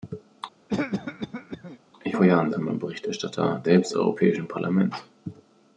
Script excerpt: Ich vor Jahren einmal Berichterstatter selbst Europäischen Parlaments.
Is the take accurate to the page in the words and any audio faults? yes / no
no